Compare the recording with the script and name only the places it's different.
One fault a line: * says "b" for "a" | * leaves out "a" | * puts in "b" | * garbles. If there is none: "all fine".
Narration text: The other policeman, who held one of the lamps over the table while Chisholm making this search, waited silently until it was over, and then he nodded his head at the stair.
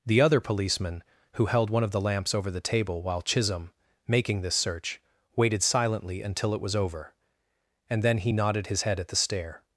all fine